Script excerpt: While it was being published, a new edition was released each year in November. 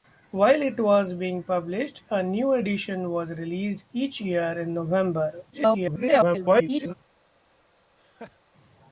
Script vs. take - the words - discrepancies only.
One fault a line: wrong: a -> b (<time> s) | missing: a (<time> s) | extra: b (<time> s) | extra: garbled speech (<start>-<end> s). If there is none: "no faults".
extra: garbled speech (5.5-6.9 s)